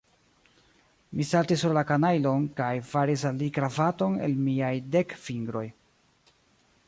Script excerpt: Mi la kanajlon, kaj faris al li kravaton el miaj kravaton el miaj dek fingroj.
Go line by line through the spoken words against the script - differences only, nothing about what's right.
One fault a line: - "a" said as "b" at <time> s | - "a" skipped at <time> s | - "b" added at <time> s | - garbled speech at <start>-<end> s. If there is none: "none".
- "saltis sur" added at 1.3 s
- "kravaton el miaj" skipped at 4.7 s